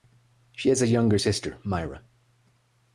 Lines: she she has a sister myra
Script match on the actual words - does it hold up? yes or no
no